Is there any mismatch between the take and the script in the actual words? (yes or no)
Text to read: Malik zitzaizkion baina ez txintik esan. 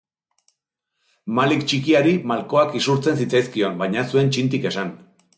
yes